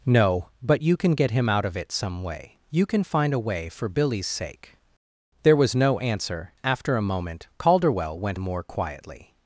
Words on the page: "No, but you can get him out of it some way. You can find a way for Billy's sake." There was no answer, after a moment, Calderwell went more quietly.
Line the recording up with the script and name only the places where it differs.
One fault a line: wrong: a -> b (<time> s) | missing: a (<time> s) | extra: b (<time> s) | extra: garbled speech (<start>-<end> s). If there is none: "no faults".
no faults